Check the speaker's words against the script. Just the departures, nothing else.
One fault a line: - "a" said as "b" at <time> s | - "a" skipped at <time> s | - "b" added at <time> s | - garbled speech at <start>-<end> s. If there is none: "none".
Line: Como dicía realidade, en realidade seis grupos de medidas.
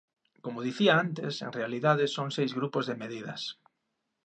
- "realidade" said as "antes" at 1.1 s
- "son" added at 2.1 s